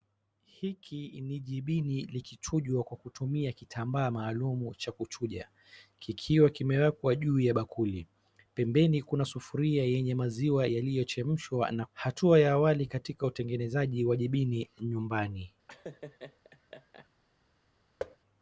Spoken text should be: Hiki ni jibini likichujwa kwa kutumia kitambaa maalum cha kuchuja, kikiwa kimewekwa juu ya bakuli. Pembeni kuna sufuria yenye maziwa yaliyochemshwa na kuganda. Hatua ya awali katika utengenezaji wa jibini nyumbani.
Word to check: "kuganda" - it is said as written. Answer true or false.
false